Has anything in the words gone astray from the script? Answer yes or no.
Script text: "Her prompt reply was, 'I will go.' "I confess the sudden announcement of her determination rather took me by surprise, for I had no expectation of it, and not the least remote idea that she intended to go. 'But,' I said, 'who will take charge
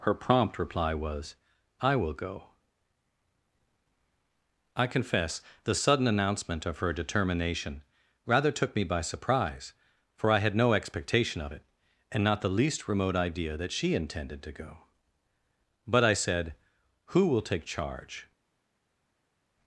no